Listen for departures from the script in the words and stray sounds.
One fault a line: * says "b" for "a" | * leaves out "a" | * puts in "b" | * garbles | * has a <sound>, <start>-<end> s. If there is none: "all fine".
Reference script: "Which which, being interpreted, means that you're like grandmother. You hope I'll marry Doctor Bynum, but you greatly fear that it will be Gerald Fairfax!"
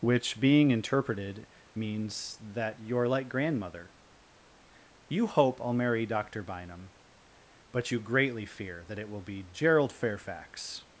* leaves out "which"